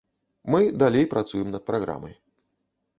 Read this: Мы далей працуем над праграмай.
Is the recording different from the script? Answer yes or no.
no